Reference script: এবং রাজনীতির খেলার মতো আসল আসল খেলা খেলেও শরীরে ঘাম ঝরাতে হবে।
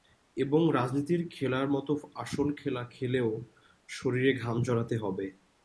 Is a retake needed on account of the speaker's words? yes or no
yes